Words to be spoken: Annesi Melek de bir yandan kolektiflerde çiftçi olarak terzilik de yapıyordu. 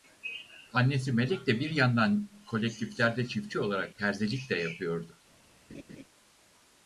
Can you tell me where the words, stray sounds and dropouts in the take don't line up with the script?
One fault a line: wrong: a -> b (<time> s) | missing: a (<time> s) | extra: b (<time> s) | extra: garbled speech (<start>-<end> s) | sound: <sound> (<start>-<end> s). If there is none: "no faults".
sound: laugh (5.7-6.0 s)